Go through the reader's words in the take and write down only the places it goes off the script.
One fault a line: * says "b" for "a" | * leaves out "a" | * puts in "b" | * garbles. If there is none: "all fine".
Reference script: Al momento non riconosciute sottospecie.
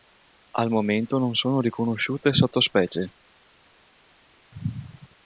* puts in "sono"